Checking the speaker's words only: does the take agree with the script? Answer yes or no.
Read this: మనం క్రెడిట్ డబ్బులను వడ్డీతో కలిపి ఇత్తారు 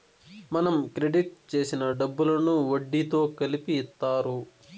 no